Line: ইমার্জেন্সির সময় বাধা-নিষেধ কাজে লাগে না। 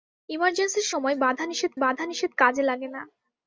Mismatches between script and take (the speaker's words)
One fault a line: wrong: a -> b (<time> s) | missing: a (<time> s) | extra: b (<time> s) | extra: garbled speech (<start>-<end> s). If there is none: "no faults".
extra: বাধা-নিষেধ (1.8 s)